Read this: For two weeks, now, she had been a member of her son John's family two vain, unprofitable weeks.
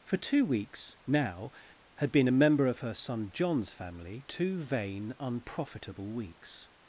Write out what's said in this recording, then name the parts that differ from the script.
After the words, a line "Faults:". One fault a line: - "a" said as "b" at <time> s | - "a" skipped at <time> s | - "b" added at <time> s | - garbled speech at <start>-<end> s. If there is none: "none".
For two weeks, now, had been a member of her son John's family two vain, unprofitable weeks.
Faults:
- "she" skipped at 1.5 s